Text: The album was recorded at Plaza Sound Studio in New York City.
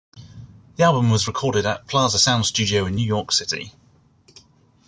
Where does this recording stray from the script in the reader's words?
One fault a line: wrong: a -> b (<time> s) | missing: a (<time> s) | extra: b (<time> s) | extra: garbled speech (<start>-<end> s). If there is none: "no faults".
no faults